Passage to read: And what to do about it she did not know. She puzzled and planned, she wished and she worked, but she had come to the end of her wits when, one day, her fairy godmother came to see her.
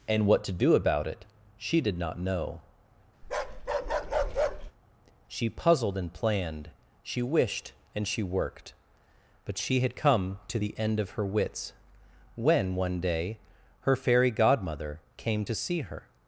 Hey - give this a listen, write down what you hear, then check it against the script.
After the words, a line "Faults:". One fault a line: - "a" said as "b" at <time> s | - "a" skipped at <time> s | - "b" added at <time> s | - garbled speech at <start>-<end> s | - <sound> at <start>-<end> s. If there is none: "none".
And what to do about it she did not know. She puzzled and planned, she wished and she worked, but she had come to the end of her wits when, one day, her fairy godmother came to see her.
Faults:
- bark at 3.2-4.7 s